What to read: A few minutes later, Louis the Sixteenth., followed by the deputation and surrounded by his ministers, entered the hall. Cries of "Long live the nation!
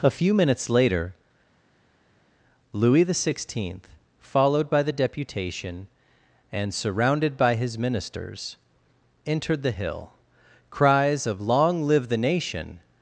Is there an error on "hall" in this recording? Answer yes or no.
yes